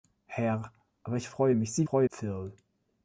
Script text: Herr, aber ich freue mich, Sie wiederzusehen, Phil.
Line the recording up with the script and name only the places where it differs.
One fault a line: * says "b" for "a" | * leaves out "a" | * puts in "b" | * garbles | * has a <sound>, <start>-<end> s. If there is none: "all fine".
* says "freue" for "wiederzusehen"